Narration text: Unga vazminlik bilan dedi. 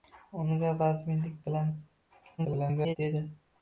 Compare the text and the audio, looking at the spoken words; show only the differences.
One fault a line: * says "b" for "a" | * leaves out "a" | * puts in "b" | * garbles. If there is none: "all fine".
* garbles